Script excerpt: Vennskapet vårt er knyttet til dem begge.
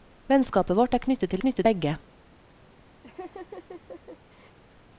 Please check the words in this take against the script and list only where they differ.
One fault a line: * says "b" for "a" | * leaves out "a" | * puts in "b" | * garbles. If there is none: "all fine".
* says "knyttet" for "dem"